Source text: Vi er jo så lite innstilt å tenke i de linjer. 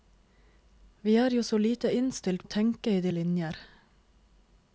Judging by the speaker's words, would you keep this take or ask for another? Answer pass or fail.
pass